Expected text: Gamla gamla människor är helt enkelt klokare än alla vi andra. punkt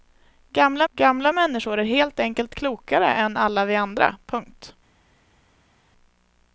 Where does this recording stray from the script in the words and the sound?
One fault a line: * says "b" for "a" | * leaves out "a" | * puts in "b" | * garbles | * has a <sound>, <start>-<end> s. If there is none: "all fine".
all fine